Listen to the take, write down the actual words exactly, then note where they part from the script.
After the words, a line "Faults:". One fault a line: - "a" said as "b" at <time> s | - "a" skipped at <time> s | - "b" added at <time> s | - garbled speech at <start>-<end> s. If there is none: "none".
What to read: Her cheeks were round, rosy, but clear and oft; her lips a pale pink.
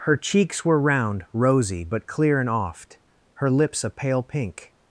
Her cheeks were round, rosy, but clear and oft; her lips a pale pink.
Faults:
none